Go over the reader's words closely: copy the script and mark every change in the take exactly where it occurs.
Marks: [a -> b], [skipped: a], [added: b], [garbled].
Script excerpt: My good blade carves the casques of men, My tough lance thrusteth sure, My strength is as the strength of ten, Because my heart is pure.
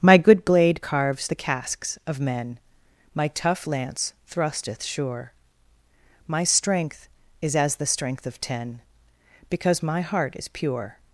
My good blade carves the casques of men, My tough lance thrusteth sure, My strength is as the strength of ten, Because my heart is pure.